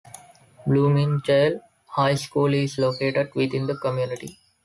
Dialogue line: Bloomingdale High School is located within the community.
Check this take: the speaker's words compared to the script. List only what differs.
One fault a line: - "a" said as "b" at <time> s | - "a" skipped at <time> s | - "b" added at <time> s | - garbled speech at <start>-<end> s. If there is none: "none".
none